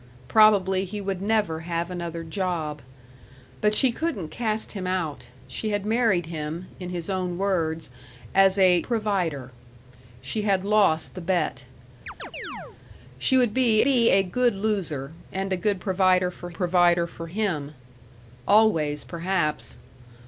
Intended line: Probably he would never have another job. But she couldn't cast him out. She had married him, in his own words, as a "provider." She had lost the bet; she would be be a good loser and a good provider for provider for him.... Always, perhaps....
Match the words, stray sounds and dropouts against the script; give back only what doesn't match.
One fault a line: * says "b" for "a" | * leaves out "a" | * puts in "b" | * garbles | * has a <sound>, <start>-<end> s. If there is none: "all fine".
* has a chirp, 12.1-12.8 s